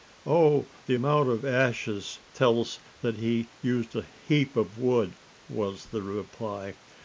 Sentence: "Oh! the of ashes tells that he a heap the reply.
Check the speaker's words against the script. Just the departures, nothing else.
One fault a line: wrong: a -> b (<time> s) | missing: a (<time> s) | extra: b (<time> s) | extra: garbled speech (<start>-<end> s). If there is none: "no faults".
extra: amount (0.9 s)
extra: used (3.6 s)
extra: of wood was (4.5 s)